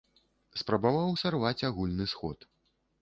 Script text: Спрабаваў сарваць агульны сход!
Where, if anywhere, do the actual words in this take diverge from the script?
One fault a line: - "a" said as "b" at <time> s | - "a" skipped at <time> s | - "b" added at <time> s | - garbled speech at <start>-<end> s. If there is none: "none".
none